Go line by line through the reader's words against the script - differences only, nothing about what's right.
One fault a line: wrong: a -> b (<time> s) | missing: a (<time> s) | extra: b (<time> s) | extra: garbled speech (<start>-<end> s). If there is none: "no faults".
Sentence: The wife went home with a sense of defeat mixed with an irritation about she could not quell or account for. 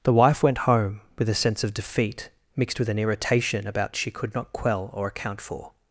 no faults